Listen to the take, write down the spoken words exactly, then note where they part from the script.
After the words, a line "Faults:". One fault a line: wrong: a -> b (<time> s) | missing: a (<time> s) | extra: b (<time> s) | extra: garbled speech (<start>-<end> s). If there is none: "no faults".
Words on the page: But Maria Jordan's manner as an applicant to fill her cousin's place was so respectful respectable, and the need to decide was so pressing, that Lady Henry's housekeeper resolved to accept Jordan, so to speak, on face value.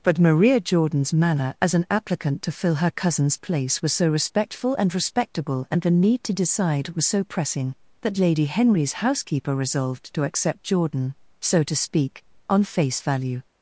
But Maria Jordan's manner as an applicant to fill her cousin's place was so respectful and respectable, and the need to decide was so pressing, that Lady Henry's housekeeper resolved to accept Jordan, so to speak, on face value.
Faults:
extra: and (4.8 s)